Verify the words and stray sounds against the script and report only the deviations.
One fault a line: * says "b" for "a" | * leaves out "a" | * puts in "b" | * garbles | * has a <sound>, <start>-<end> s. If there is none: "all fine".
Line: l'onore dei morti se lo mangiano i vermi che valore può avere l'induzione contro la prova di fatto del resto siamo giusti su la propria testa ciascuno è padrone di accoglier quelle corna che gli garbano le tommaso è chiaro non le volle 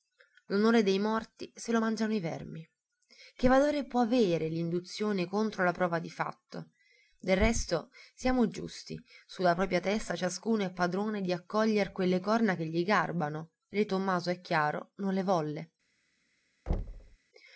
* has a thud, 16.7-17.2 s